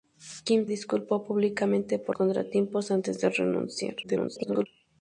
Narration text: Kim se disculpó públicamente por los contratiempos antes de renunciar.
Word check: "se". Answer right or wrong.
wrong